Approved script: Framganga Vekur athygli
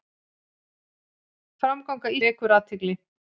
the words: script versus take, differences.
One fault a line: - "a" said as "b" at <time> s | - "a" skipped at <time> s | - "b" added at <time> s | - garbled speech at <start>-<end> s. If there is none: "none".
none